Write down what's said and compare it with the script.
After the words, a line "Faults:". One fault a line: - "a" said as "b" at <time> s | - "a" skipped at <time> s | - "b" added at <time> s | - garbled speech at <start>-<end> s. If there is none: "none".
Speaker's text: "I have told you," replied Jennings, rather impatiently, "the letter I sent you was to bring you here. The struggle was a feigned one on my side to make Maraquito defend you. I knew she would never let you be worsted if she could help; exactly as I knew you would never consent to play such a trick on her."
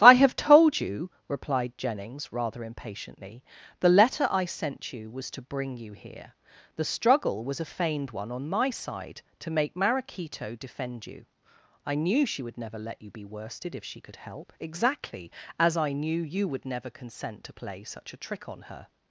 "I have told you," replied Jennings, rather impatiently, "the letter I sent you was to bring you here. The struggle was a feigned one on my side to make Maraquito defend you. I knew she would never let you be worsted if she could help; exactly as I knew you would never consent to play such a trick on her."
Faults:
none